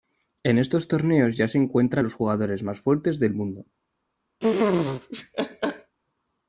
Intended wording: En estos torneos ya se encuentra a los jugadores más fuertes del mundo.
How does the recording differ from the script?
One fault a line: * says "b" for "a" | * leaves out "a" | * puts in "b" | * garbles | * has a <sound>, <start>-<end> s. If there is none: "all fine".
* has a laugh, 4.4-5.9 s